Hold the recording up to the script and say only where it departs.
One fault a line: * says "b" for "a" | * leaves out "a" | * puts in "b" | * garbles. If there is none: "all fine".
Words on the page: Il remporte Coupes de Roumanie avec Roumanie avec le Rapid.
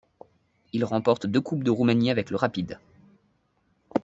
* puts in "deux"
* leaves out "Roumanie avec"